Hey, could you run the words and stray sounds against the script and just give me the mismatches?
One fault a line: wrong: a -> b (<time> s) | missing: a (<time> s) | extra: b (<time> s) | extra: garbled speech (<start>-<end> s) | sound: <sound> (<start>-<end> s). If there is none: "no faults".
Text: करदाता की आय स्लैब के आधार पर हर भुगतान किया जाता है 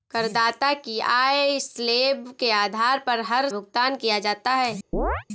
sound: chirp (4.9-5.2 s)